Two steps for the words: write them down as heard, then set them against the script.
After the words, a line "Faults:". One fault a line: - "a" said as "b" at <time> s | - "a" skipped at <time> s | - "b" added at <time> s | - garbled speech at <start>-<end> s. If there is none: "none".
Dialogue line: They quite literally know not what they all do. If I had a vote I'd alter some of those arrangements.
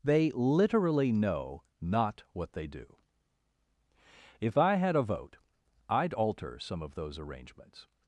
They literally know not what they do. If I had a vote I'd alter some of those arrangements.
Faults:
- "quite" skipped at 0.3 s
- "all" skipped at 2.7 s